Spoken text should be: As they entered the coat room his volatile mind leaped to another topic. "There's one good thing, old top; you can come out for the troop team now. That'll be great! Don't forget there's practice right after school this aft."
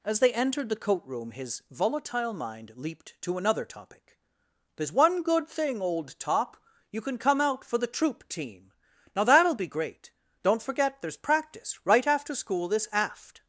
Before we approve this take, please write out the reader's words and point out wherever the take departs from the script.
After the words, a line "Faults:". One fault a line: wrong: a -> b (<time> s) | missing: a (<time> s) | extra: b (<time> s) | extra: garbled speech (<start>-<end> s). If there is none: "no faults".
As they entered the coat room his volatile mind leaped to another topic. "There's one good thing, old top; you can come out for the troop team now. That'll be great! Don't forget there's practice right after school this aft."
Faults:
no faults